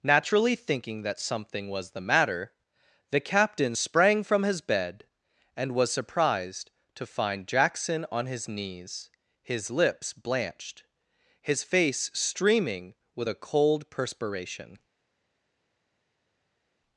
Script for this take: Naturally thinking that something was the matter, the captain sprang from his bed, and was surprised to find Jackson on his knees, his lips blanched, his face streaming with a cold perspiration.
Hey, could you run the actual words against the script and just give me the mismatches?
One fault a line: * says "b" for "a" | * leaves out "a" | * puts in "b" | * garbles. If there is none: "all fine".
all fine